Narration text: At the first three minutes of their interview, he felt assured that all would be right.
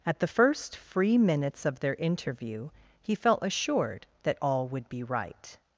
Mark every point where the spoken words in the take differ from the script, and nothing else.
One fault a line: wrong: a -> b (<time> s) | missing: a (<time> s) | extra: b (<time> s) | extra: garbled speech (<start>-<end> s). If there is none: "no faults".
wrong: three -> free (0.8 s)